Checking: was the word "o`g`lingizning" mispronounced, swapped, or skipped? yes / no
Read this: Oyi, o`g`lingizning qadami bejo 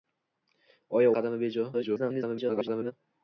yes